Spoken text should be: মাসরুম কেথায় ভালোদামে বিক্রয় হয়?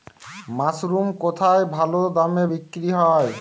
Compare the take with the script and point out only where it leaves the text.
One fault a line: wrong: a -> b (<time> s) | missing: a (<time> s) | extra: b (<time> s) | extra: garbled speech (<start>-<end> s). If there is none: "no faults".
no faults